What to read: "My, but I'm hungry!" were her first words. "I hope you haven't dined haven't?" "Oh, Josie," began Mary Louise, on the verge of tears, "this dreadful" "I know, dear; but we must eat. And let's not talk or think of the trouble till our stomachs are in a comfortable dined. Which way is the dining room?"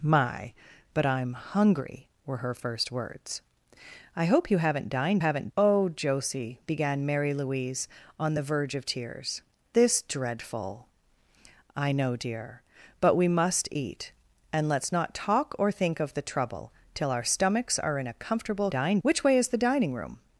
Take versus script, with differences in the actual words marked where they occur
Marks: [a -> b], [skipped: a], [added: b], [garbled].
"My, but I'm hungry!" were her first words. "I hope you haven't dined haven't?" "Oh, Josie," began Mary Louise, on the verge of tears, "this dreadful" "I know, dear; but we must eat. And let's not talk or think of the trouble till our stomachs are in a comfortable dined. Which way is the dining room?"